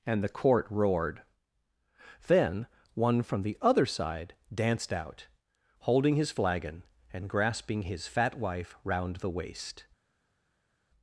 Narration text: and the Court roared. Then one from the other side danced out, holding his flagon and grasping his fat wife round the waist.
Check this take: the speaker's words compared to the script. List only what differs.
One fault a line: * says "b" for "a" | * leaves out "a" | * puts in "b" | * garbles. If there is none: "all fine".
all fine